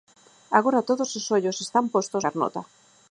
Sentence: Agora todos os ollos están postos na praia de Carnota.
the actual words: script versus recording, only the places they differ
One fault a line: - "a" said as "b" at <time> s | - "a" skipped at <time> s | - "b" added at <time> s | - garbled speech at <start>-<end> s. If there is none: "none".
- "na praia de" skipped at 2.2 s